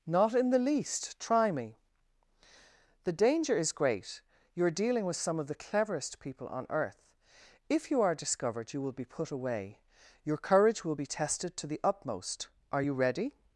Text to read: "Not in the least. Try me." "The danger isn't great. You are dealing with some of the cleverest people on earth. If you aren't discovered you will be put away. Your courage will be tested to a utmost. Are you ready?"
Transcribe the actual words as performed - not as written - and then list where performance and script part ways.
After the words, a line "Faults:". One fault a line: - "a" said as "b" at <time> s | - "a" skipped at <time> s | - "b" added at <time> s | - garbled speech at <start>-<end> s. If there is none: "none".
"Not in the least. Try me." "The danger is great. You are dealing with some of the cleverest people on earth. If you are discovered you will be put away. Your courage will be tested to the utmost. Are you ready?"
Faults:
- "isn't" said as "is" at 3.5 s
- "aren't" said as "are" at 8.0 s
- "a" said as "the" at 11.7 s